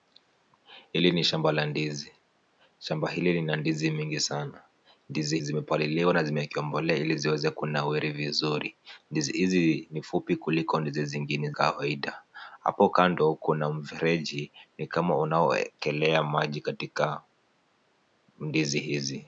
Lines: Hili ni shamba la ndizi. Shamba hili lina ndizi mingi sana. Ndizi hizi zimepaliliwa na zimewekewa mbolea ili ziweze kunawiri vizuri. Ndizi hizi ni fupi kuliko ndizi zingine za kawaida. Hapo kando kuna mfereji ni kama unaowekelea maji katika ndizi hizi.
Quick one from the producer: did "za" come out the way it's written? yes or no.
no